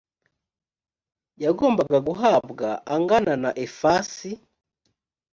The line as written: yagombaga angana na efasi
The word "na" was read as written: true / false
true